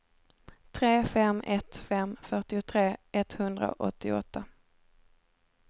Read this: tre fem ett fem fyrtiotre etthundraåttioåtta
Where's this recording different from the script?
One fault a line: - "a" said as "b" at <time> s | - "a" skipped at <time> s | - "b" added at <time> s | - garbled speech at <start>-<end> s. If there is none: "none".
none